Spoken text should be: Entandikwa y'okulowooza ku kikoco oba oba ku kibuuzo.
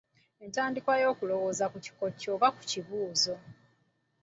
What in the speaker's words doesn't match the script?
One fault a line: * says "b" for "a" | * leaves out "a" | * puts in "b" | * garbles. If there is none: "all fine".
* leaves out "oba"